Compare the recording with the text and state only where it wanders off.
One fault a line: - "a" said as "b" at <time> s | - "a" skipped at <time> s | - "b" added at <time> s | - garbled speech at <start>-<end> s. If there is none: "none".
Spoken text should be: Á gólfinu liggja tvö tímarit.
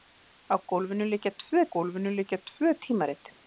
- "gólfinu liggja tvö" added at 1.7 s